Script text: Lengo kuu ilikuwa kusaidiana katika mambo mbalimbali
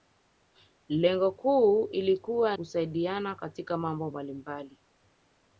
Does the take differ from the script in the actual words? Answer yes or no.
no